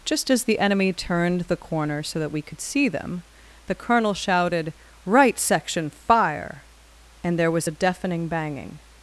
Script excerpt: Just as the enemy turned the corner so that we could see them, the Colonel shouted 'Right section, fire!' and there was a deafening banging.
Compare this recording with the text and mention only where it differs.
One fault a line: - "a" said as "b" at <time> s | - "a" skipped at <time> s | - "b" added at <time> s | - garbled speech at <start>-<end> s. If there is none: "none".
none